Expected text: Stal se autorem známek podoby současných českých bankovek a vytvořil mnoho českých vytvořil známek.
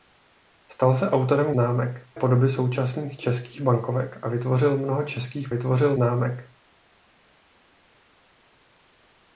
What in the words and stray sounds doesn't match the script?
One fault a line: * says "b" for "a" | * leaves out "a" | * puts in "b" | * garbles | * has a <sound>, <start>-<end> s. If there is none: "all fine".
all fine